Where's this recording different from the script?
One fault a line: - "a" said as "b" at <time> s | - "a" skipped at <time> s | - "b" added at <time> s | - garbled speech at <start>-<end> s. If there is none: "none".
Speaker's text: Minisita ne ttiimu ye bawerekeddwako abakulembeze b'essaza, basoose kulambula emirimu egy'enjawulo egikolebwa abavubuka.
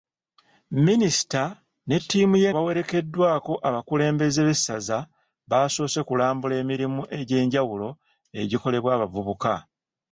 none